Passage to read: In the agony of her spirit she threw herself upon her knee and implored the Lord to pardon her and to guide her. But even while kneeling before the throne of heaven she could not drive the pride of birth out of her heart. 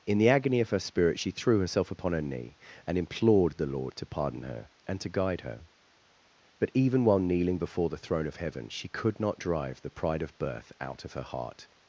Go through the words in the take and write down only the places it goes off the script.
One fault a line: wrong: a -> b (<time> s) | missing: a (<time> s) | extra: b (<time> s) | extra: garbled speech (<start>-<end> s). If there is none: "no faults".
no faults